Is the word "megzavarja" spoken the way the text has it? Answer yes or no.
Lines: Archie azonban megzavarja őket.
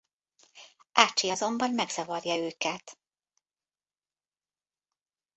yes